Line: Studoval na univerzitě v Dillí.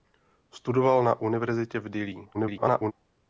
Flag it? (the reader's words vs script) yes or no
yes